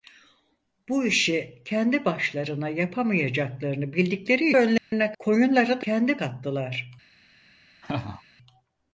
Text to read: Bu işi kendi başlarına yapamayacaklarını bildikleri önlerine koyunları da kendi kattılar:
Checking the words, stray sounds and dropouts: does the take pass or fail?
fail